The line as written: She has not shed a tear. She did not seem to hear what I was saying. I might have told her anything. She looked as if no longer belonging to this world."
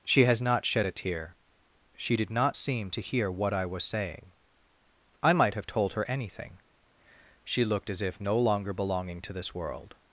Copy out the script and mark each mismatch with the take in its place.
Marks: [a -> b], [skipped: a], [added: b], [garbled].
She has not shed a tear. She did not seem to hear what I was saying. I might have told her anything. She looked as if no longer belonging to this world."